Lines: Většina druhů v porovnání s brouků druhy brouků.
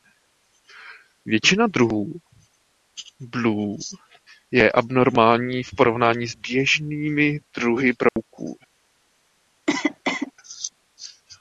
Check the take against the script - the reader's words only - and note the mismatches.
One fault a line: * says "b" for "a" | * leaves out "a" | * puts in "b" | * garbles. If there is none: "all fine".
* puts in "blue je abnormální"
* says "běžnými" for "brouků"